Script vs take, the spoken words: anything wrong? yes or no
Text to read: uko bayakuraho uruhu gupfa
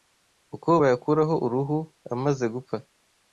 yes